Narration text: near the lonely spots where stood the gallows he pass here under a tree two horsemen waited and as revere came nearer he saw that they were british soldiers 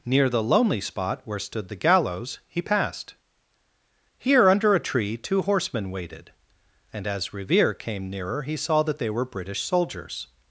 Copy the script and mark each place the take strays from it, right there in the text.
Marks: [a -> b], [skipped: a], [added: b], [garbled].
near the lonely [spots -> spot] where stood the gallows he [pass -> passed] here under a tree two horsemen waited and as revere came nearer he saw that they were british soldiers